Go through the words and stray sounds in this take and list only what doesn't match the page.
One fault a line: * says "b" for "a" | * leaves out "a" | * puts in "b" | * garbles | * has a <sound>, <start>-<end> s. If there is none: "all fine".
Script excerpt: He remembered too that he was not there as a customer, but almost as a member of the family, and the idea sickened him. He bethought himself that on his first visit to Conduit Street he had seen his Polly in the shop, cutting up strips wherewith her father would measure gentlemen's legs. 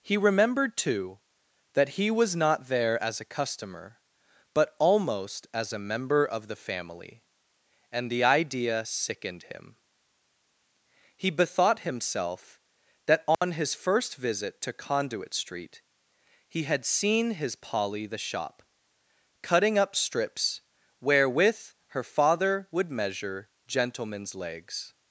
* has a dropout, 13.3-13.4 s
* leaves out "in"